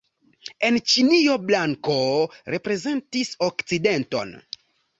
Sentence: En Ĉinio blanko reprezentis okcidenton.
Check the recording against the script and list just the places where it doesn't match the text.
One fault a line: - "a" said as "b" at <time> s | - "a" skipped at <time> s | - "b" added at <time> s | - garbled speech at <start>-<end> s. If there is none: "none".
none